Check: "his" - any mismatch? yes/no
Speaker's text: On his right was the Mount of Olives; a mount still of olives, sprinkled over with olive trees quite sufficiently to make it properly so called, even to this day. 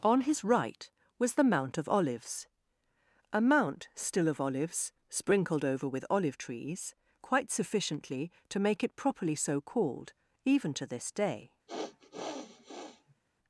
no